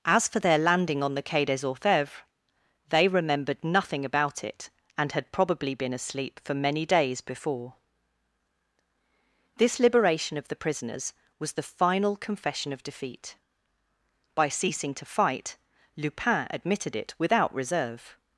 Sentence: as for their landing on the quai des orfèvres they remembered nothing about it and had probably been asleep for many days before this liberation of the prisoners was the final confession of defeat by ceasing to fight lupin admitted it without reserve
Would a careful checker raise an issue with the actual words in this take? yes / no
no